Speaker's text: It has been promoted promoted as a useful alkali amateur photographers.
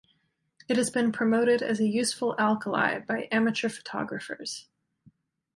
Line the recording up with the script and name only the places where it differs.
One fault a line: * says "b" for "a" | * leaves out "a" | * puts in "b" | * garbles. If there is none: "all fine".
* leaves out "promoted"
* puts in "by"